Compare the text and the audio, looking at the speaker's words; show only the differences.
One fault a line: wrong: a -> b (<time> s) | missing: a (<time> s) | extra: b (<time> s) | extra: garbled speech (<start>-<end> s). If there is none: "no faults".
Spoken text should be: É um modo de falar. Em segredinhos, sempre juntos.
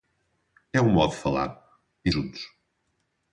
missing: segredinhos sempre (2.1 s)